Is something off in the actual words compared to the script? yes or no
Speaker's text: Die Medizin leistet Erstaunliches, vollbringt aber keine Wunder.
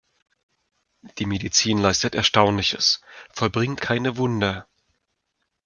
yes